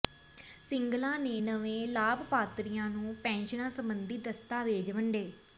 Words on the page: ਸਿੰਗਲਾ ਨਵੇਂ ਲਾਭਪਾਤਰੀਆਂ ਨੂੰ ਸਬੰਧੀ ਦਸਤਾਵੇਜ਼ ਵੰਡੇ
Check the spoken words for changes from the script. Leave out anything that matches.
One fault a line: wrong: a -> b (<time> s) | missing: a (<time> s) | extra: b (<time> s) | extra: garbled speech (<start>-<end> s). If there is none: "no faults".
extra: ਨੇ (1.2 s)
extra: ਪੈਨਸ਼ਨਾਂ (3.2 s)